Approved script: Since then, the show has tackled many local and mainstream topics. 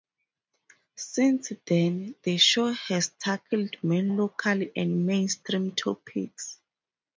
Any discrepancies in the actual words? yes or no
no